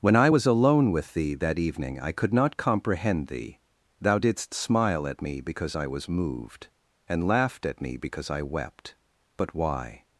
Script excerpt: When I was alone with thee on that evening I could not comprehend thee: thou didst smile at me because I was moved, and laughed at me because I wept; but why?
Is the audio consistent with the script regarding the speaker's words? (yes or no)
no